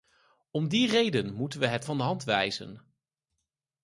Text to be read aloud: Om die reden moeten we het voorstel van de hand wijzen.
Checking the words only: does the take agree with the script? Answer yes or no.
no